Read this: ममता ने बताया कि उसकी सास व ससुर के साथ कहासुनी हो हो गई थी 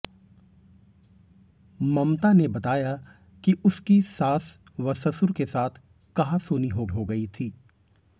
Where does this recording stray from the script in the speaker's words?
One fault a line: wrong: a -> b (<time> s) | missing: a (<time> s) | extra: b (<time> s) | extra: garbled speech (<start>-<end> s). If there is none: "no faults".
no faults